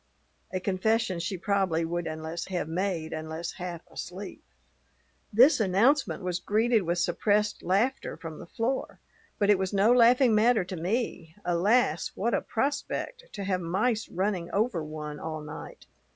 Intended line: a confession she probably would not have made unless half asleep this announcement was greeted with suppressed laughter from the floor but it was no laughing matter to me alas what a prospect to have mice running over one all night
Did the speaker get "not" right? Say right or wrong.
wrong